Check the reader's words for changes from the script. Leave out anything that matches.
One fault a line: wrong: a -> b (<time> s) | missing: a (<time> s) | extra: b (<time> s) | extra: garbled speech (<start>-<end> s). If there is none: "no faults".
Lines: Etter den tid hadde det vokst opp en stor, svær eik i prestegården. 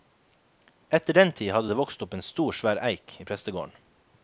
no faults